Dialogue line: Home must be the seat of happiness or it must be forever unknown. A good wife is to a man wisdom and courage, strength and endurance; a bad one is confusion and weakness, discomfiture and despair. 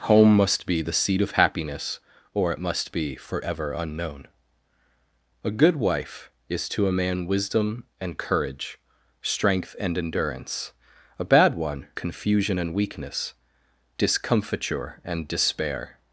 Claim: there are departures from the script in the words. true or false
true